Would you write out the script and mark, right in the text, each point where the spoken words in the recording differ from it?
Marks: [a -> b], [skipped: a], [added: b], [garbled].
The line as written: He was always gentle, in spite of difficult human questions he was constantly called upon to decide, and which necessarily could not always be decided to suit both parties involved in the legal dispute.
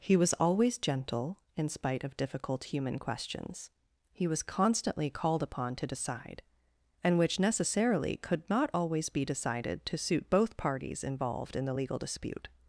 He was always gentle, in spite of difficult human questions he was constantly called upon to decide, and which necessarily could not always be decided to suit both parties involved in the legal dispute.